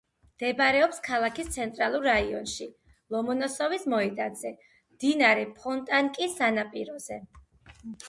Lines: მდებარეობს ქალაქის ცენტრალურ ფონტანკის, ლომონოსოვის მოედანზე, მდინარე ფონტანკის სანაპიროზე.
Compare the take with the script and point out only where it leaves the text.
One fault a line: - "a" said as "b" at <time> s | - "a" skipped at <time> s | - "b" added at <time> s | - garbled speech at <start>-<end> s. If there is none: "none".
- "ფონტანკის" said as "რაიონში" at 2.1 s